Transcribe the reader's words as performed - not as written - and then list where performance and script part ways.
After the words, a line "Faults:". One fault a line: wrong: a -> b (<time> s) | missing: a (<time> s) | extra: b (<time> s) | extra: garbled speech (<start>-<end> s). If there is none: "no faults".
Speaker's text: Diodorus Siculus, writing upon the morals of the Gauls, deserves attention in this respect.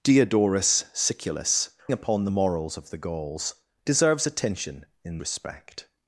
Diodorus Siculus, upon the morals of the Gauls, deserves attention in respect.
Faults:
missing: writing (1.7 s)
missing: this (5.2 s)